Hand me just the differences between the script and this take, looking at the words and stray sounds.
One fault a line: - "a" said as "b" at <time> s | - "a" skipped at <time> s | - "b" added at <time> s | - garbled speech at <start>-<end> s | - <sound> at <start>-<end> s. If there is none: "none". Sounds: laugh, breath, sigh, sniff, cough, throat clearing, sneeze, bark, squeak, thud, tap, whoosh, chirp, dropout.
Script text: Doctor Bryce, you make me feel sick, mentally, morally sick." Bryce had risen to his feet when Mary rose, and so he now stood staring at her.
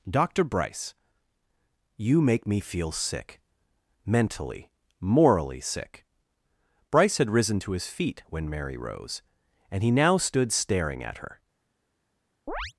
- "so" skipped at 9.8 s
- chirp at 12.5-12.7 s